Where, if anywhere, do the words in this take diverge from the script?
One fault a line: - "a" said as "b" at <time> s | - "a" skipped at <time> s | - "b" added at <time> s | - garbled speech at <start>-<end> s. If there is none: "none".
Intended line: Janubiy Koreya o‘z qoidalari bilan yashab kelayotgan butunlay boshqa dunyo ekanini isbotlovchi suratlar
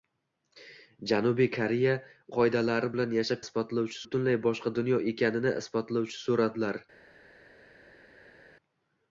- "o‘z" skipped at 1.9 s
- "kelayotgan" said as "isbotlovchi" at 3.5 s